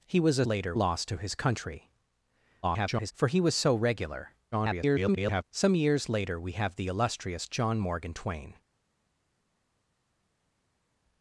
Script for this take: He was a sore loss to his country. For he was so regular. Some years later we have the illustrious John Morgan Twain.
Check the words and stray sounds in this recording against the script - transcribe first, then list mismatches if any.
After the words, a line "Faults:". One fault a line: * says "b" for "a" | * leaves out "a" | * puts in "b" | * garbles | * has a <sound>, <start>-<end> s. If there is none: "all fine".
He was a later loss to his country. [garbled] For he was so regular. [garbled] Some years later we have the illustrious John Morgan Twain.
Faults:
* says "later" for "sore"
* garbles
* garbles